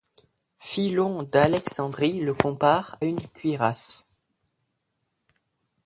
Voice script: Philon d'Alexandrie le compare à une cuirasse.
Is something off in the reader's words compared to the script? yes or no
yes